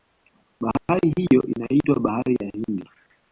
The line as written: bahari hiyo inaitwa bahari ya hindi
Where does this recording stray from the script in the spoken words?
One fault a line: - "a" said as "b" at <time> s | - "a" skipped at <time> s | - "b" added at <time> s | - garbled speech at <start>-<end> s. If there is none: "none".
none